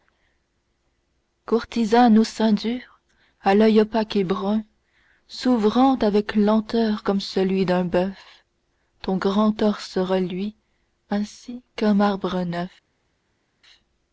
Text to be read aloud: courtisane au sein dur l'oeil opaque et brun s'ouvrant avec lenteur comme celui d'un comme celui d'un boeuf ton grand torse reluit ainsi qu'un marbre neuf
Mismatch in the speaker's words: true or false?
true